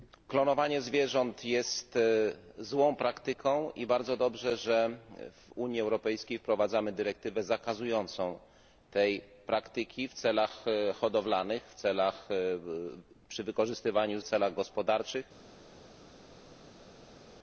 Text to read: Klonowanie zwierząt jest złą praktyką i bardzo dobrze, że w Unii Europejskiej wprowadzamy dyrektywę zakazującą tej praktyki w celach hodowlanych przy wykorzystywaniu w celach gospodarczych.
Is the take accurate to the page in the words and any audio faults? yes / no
yes